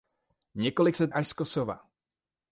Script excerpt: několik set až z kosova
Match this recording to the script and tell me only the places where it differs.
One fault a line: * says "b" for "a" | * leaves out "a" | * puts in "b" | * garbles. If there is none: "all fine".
all fine